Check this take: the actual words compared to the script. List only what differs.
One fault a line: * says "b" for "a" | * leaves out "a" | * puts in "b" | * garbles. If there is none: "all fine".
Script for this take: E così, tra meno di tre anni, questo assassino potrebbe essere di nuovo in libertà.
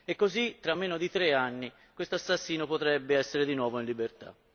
all fine